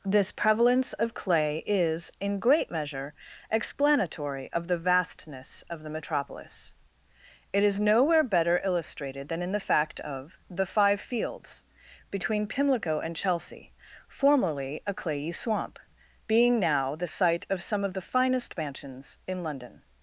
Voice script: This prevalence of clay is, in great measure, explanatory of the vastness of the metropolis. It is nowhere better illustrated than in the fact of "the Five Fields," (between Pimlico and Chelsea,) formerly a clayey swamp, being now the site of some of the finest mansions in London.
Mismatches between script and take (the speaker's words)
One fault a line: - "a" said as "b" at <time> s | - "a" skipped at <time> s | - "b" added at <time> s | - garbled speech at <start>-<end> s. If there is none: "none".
none